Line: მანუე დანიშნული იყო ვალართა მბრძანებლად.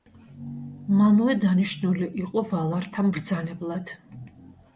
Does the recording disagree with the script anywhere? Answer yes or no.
no